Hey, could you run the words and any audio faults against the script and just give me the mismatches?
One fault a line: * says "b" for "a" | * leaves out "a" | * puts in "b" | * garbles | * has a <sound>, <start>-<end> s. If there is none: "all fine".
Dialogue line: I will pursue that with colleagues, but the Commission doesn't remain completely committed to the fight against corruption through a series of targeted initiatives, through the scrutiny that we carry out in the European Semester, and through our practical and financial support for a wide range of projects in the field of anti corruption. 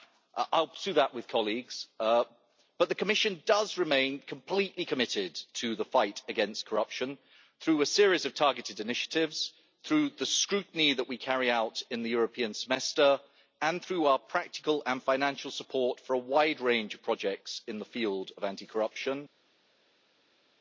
* says "does" for "doesn't"